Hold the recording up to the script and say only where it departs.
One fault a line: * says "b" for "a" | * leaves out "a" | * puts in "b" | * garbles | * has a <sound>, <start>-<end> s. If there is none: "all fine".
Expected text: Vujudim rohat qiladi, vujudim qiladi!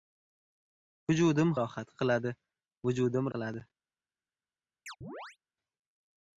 * has a chirp, 4.9-5.4 s